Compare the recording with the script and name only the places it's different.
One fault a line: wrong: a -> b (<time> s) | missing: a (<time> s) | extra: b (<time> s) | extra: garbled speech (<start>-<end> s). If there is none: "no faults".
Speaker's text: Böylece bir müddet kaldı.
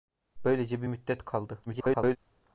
extra: garbled speech (1.7-2.2 s)